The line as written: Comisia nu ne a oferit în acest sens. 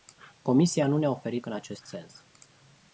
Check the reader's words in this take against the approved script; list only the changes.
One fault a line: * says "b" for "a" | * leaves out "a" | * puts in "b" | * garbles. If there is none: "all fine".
all fine